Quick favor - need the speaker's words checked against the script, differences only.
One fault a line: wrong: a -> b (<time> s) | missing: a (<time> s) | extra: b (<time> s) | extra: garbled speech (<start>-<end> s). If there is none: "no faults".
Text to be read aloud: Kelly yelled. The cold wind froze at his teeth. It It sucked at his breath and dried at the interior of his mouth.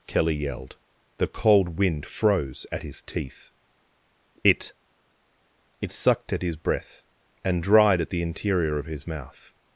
no faults